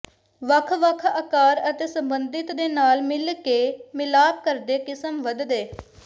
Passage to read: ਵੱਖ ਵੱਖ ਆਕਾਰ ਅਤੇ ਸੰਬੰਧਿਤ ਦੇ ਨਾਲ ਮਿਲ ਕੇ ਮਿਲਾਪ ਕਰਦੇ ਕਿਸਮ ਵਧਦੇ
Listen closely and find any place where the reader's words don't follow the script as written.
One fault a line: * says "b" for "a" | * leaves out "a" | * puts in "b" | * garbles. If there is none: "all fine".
all fine